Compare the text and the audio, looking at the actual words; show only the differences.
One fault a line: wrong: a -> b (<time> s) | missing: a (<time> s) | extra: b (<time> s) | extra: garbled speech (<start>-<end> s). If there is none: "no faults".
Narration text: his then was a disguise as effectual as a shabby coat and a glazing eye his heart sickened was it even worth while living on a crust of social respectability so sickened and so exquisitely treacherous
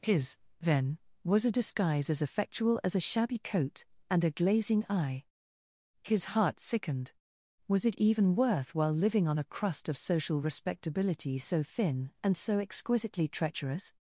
wrong: sickened -> thin (11.6 s)